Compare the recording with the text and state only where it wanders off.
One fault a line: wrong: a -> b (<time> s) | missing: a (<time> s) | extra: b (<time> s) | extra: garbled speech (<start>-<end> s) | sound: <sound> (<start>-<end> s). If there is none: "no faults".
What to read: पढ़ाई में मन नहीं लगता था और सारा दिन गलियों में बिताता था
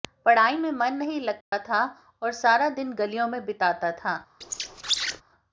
sound: dropout (1.4-1.5 s)
sound: squeak (4.4-5.2 s)